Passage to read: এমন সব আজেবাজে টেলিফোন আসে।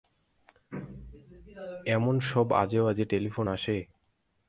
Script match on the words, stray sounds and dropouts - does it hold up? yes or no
yes